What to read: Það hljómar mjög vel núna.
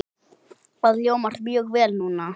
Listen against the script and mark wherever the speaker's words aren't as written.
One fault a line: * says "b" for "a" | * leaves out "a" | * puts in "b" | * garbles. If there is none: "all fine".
all fine